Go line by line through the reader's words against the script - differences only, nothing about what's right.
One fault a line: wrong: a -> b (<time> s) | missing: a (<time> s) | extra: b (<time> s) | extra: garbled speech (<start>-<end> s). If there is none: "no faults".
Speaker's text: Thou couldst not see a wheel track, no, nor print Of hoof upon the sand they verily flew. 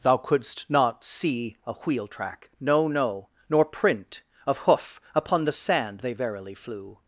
extra: no (2.9 s)